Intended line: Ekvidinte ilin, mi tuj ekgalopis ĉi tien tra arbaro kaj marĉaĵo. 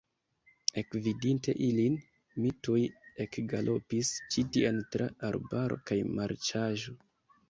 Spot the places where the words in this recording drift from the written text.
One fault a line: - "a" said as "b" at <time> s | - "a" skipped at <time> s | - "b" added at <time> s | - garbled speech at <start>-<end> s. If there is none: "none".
none